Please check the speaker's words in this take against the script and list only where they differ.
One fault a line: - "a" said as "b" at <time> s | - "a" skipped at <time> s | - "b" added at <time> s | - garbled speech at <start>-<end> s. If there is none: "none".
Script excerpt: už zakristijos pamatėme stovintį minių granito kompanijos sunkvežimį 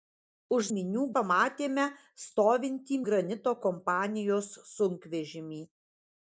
- "zakristijos" said as "minių" at 0.8 s
- "minių" skipped at 3.0 s